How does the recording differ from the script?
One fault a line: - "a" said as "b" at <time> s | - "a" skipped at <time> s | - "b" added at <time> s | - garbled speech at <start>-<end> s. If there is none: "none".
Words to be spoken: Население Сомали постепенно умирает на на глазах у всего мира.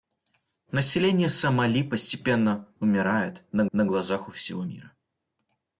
none